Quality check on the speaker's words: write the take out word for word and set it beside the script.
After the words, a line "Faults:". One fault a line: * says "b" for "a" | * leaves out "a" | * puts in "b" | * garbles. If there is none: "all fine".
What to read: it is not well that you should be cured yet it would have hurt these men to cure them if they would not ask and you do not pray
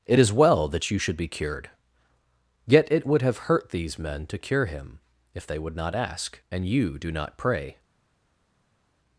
it is well that you should be cured yet it would have hurt these men to cure him if they would not ask and you do not pray
Faults:
* leaves out "not"
* says "him" for "them"